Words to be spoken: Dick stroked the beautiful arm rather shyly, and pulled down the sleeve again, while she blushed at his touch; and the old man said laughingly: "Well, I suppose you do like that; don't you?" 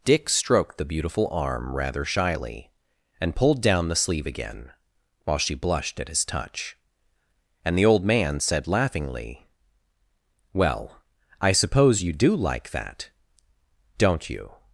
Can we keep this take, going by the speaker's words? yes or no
yes